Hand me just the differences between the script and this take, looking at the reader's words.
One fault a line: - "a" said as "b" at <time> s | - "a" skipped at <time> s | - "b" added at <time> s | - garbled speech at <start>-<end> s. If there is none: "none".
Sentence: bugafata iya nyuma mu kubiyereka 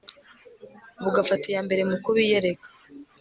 - "nyuma" said as "mbere" at 1.7 s